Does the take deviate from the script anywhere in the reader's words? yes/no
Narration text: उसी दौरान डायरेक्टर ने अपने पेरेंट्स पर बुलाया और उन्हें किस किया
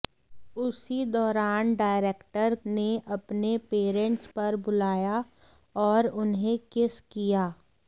no